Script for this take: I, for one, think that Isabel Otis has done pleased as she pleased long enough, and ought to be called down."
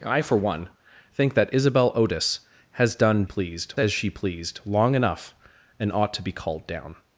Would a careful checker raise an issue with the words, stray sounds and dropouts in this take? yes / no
no